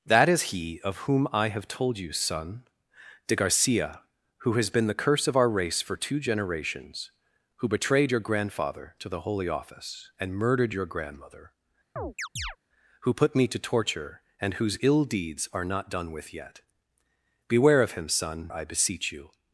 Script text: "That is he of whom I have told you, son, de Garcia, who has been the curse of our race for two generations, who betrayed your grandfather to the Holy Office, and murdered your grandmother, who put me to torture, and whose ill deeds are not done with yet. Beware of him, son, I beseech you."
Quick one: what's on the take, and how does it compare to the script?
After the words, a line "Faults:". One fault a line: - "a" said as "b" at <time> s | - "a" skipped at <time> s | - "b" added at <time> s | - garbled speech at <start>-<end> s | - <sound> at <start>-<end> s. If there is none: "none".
"That is he of whom I have told you, son, de Garcia, who has been the curse of our race for two generations, who betrayed your grandfather to the Holy Office, and murdered your grandmother, who put me to torture, and whose ill deeds are not done with yet. Beware of him, son, I beseech you."
Faults:
- chirp at 12.0-12.6 s